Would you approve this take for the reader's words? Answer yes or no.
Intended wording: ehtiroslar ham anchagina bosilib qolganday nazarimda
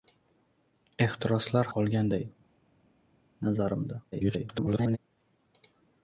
no